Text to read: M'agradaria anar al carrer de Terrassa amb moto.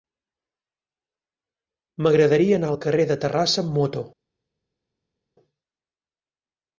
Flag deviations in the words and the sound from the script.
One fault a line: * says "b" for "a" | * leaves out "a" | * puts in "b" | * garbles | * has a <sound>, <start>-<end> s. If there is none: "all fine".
all fine